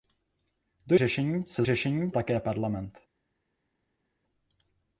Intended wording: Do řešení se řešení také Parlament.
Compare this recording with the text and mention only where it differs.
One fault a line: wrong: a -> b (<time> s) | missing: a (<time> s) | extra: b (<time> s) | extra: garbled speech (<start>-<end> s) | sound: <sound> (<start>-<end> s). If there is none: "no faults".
no faults